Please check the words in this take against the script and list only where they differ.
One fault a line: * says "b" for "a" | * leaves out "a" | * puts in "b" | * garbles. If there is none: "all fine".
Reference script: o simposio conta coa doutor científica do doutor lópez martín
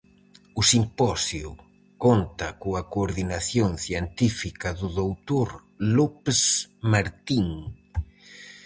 * says "coordinación" for "doutor"